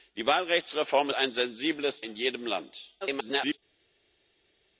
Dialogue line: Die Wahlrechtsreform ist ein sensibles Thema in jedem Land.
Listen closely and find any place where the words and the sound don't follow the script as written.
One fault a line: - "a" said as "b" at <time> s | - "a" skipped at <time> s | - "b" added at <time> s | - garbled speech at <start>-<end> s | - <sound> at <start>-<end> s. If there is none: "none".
- "ist" skipped at 1.1 s
- "Thema" skipped at 2.0 s
- garbled speech at 3.0-3.6 s